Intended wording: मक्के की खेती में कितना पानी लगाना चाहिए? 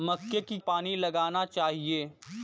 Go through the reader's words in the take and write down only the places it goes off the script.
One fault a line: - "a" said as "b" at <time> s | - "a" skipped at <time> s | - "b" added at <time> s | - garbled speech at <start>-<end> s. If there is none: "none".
- "खेती में कितना" skipped at 0.6 s